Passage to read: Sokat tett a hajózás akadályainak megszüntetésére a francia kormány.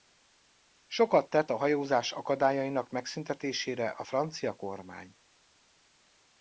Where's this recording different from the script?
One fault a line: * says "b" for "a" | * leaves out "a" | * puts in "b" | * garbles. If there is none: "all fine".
all fine